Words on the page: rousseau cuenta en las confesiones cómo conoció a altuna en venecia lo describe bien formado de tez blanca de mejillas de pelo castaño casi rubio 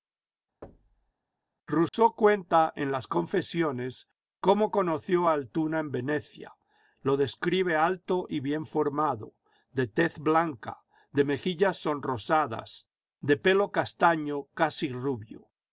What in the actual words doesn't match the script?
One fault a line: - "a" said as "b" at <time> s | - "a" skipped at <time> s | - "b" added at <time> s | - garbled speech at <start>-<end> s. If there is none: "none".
- "alto y" added at 7.8 s
- "sonrosadas" added at 11.8 s